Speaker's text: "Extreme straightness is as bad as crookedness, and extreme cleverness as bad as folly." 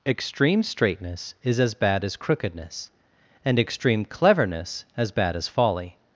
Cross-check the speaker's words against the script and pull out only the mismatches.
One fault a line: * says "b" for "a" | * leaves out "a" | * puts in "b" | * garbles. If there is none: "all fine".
all fine